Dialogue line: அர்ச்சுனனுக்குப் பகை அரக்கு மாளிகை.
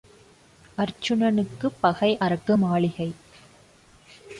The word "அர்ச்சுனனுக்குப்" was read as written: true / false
true